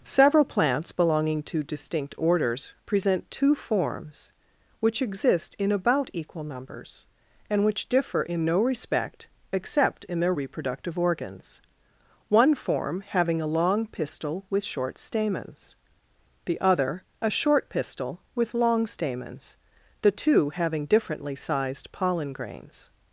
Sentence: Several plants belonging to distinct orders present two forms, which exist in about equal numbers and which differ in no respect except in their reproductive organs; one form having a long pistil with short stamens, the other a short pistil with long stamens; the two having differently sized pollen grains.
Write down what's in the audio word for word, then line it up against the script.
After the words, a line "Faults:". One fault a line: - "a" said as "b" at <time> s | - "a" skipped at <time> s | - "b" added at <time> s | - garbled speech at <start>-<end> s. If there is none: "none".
Several plants belonging to distinct orders present two forms, which exist in about equal numbers and which differ in no respect except in their reproductive organs; one form having a long pistil with short stamens, the other a short pistil with long stamens; the two having differently sized pollen grains.
Faults:
none